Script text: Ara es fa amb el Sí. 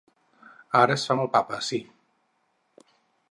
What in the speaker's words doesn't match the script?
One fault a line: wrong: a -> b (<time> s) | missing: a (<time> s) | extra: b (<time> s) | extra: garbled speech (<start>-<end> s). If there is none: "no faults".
extra: Papa (1.3 s)